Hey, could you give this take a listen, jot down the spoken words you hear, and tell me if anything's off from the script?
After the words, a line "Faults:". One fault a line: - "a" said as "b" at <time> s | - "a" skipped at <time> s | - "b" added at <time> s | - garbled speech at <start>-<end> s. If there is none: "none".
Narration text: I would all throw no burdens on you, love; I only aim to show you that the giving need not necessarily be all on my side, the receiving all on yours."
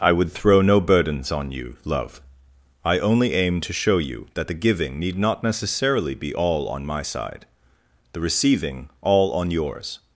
I would throw no burdens on you, love; I only aim to show you that the giving need not necessarily be all on my side, the receiving all on yours."
Faults:
- "all" skipped at 0.3 s